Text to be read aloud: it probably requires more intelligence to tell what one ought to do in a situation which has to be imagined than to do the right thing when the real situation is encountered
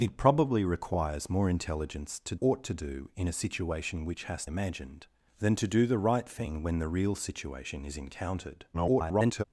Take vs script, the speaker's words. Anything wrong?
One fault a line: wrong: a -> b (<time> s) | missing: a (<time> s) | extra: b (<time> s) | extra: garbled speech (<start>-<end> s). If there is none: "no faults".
missing: tell what one (2.4 s)
missing: to be (4.5 s)
extra: garbled speech (8.7-9.4 s)